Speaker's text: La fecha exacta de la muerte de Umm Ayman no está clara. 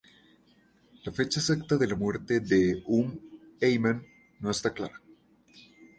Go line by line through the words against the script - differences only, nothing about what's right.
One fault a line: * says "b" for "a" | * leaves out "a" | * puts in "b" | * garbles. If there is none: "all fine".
all fine